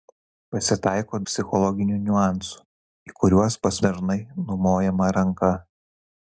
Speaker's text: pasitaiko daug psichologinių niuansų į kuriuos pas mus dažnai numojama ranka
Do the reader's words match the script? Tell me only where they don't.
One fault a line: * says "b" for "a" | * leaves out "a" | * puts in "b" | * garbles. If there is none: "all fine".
* leaves out "daug"
* leaves out "mus"